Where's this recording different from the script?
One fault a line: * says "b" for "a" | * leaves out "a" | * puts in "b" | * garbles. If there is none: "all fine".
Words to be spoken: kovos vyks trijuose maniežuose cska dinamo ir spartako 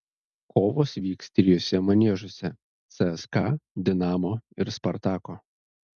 all fine